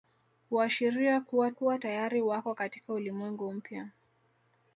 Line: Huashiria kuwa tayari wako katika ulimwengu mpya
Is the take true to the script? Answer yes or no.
no